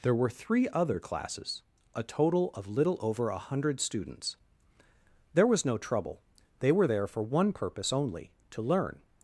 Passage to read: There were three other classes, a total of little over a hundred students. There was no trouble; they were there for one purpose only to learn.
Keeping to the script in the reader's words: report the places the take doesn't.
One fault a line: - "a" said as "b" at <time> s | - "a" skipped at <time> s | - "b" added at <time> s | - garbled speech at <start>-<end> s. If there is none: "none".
none